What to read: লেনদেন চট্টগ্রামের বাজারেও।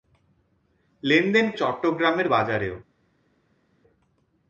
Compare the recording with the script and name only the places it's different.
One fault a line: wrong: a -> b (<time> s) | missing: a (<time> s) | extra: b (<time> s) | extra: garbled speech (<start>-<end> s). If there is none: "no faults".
no faults